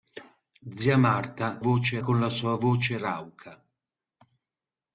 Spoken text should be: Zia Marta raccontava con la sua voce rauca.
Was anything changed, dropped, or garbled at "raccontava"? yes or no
yes